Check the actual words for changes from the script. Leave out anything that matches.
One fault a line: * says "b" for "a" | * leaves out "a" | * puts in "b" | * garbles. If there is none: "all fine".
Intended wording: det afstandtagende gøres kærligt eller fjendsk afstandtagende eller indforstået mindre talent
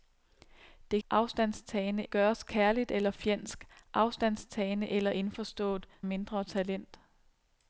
all fine